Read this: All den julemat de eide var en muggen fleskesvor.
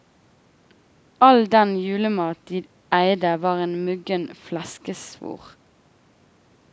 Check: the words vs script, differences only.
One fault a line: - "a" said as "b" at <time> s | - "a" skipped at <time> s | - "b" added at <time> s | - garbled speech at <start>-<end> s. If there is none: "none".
none